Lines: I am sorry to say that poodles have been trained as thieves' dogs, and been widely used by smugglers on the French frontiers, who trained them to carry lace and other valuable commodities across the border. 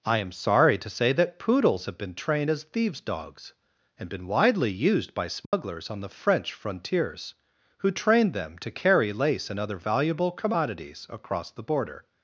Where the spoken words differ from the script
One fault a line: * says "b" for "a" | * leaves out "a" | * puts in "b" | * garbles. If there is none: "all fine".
all fine